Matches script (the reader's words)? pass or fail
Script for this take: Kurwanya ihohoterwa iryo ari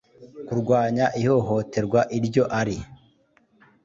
pass